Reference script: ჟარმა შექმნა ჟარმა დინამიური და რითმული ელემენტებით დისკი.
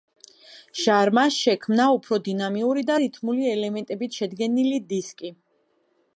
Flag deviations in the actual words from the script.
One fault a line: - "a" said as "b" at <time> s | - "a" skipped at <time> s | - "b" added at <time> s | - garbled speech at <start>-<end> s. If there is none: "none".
- "ჟარმა" said as "უფრო" at 2.0 s
- "შედგენილი" added at 4.2 s